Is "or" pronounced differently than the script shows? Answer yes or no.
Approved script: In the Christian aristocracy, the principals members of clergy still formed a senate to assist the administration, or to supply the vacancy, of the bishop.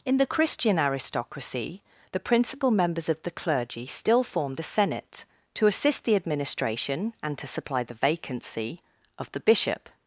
yes